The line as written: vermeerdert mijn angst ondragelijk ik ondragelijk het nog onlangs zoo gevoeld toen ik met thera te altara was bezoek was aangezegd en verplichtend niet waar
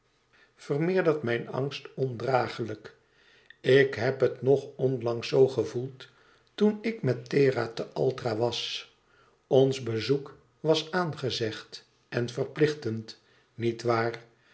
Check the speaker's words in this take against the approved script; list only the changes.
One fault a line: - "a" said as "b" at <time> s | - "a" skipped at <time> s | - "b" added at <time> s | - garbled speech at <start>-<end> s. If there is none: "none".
- "ondragelijk" said as "heb" at 4.0 s
- "ons" added at 9.5 s